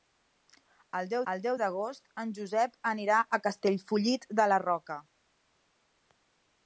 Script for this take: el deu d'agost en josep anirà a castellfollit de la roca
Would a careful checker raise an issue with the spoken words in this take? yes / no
yes